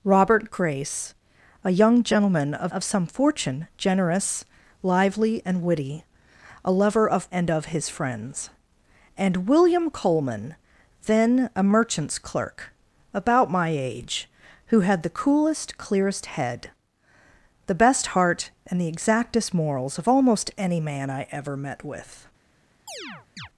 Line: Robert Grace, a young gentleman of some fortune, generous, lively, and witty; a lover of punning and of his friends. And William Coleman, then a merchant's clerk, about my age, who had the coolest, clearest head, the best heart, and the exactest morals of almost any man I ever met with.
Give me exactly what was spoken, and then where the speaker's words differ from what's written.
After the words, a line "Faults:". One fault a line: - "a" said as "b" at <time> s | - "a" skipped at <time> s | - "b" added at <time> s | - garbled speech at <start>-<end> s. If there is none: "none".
Robert Grace, a young gentleman of of some fortune, generous, lively, and witty; a lover of and of his friends. And William Coleman, then a merchant's clerk, about my age, who had the coolest, clearest head, the best heart, and the exactest morals of almost any man I ever met with.
Faults:
- "of" added at 2.7 s
- "punning" skipped at 7.3 s